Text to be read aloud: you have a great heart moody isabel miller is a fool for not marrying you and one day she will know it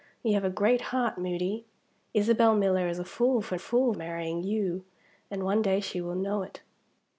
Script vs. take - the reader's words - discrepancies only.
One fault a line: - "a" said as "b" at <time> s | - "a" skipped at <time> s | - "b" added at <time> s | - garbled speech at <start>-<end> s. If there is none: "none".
- "not" said as "fool" at 3.6 s